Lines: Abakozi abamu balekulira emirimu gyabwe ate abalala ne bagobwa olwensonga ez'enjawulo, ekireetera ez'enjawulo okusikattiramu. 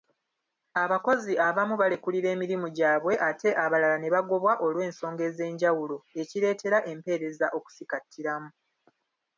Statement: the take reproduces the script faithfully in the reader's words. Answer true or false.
false